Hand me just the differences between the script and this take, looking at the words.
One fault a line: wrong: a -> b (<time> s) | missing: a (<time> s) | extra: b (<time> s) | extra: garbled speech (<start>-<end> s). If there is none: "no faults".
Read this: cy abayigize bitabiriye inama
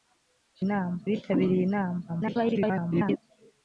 wrong: abayigize -> inama (0.7 s)
extra: garbled speech (2.1-3.2 s)